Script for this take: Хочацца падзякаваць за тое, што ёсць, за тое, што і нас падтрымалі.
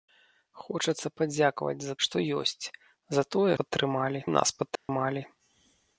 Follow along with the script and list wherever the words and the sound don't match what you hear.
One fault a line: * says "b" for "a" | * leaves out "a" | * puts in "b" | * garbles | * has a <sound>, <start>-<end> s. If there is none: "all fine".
* leaves out "тое"
* says "падтрымалі" for "што"
* has a dropout, 4.8-4.9 s